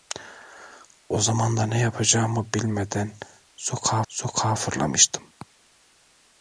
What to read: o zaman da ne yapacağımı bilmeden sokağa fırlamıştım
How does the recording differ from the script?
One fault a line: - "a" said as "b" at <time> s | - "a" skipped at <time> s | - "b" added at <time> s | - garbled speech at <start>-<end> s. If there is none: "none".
- "sokağa" added at 4.1 s